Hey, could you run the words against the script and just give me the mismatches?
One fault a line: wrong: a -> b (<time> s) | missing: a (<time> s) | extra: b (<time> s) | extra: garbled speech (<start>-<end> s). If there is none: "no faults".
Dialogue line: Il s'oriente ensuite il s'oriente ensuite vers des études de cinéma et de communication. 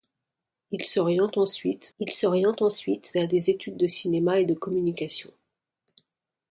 no faults